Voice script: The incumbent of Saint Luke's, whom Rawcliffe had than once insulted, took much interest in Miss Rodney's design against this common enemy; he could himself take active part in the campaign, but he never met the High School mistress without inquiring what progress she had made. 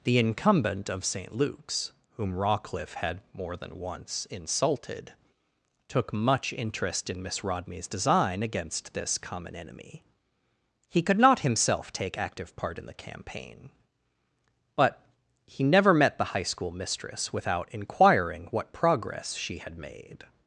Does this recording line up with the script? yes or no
no